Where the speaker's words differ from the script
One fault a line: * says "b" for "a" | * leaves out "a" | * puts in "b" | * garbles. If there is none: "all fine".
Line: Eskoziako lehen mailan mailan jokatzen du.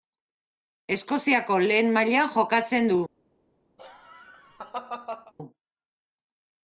* leaves out "mailan"